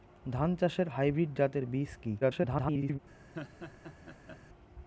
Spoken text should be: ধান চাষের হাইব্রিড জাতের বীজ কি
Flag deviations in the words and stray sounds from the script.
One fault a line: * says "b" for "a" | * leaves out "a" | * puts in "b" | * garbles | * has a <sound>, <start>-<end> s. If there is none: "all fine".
* garbles
* has a laugh, 3.3-4.4 s